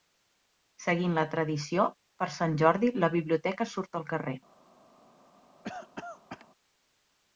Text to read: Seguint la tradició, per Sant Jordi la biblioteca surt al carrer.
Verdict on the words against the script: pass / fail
pass